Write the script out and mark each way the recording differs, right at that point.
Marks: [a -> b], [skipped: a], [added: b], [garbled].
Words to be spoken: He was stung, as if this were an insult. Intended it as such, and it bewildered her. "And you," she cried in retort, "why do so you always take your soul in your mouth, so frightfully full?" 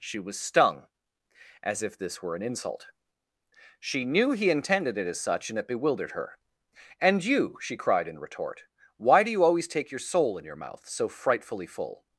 [He -> She] was stung, as if this were an insult. [added: She knew he] Intended it as such, and it bewildered her. "And you," she cried in retort, "why do [skipped: so] you always take your soul in your mouth, so frightfully full?"